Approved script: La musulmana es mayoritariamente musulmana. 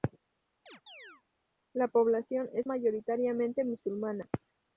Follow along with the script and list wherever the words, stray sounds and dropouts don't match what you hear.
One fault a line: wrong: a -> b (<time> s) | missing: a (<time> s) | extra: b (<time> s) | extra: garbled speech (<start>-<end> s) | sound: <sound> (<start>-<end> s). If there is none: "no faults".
sound: chirp (0.7-1.2 s)
wrong: musulmana -> población (1.9 s)